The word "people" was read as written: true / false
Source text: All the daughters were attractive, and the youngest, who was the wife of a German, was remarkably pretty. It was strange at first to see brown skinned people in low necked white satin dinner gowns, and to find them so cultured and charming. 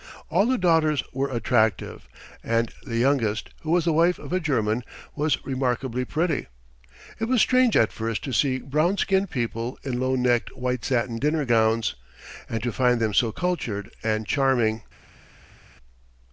true